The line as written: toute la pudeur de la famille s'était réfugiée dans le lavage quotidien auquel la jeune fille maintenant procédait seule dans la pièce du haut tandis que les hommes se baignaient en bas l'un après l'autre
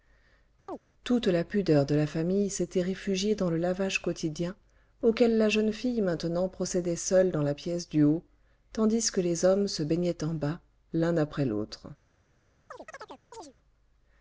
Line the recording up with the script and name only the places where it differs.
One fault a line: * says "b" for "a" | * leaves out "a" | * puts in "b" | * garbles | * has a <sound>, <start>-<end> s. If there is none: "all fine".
* has a chirp, 0.7-0.8 s
* has a chirp, 12.7-13.5 s